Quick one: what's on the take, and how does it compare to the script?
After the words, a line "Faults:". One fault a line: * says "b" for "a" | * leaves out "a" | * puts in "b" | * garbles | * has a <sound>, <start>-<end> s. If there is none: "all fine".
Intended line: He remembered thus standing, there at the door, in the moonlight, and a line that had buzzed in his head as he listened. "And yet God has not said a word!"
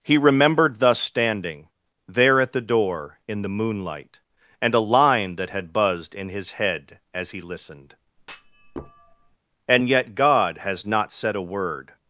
He remembered thus standing, there at the door, in the moonlight, and a line that had buzzed in his head as he listened. "And yet God has not said a word!"
Faults:
* has a thud, 8.2-9.4 s